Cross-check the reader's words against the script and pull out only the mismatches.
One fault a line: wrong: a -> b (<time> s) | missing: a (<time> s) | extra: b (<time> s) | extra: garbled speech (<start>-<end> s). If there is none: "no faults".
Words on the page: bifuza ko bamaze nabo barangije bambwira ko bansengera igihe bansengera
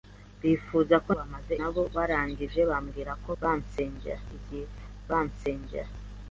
no faults